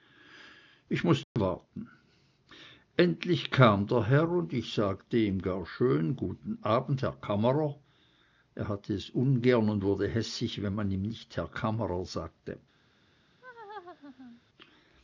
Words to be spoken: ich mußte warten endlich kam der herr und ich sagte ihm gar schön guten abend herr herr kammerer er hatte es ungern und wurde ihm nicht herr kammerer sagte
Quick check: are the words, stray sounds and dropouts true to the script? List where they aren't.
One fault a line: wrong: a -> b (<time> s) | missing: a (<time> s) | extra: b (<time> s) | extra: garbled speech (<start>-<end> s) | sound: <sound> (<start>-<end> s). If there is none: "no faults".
sound: dropout (1.2-1.4 s)
missing: herr (7.2 s)
extra: hässig wenn man (10.1 s)
sound: laugh (13.4-14.4 s)